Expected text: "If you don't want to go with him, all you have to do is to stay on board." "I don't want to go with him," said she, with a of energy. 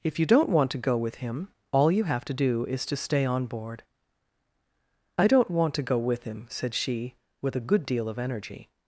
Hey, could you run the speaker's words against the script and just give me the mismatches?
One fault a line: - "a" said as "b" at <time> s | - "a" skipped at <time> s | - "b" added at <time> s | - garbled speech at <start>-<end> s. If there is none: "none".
- "good deal" added at 7.6 s